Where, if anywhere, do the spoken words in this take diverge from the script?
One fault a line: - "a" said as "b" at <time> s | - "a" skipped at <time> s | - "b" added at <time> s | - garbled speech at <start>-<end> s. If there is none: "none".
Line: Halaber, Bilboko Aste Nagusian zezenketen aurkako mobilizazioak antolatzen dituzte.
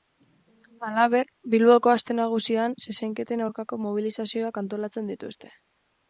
none